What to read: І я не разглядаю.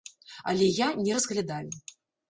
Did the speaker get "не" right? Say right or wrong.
right